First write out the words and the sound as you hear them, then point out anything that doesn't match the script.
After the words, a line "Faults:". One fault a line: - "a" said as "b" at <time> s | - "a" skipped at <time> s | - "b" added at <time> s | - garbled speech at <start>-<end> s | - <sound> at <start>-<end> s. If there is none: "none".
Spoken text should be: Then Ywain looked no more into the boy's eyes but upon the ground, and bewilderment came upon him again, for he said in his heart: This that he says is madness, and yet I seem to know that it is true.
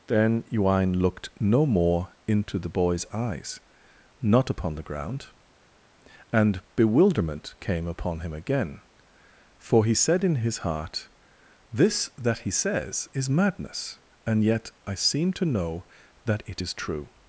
Then Ywain looked no more into the boy's eyes not upon the ground, and bewilderment came upon him again, for he said in his heart: This that he says is madness, and yet I seem to know that it is true.
Faults:
- "but" said as "not" at 4.2 s